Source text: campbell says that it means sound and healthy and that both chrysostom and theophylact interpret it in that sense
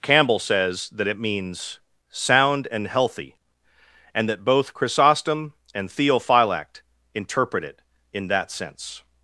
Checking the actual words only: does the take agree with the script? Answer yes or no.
yes